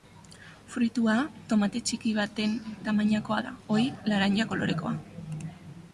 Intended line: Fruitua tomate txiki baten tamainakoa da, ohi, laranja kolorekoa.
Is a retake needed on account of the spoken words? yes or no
no